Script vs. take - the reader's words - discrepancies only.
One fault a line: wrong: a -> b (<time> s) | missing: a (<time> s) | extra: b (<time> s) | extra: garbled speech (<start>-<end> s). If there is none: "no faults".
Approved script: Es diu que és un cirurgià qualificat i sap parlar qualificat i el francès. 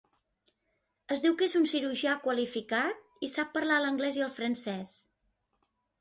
wrong: qualificat -> l'anglès (3.9 s)